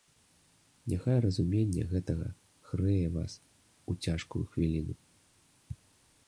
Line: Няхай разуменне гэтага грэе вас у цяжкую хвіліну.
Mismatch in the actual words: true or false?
false